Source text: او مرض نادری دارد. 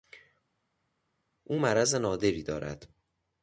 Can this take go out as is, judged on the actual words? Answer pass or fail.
pass